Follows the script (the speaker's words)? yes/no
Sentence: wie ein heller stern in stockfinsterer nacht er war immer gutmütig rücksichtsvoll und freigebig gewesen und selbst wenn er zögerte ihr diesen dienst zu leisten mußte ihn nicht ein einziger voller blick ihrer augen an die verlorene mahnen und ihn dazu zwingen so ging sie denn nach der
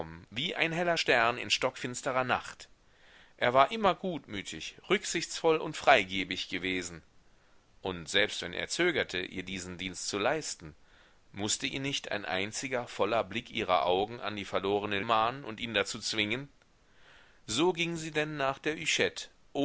yes